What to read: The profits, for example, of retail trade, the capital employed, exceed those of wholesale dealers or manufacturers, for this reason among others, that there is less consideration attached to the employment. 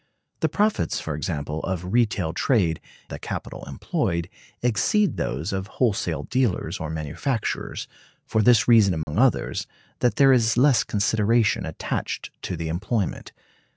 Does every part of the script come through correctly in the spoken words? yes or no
yes